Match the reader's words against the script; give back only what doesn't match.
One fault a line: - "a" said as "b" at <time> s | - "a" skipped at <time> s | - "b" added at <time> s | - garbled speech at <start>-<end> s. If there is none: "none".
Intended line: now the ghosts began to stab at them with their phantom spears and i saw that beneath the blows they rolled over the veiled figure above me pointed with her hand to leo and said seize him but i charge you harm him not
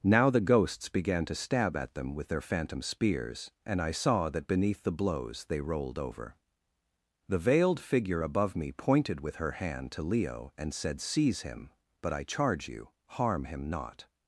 none